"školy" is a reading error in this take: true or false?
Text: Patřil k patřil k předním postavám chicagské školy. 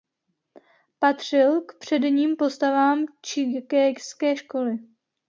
false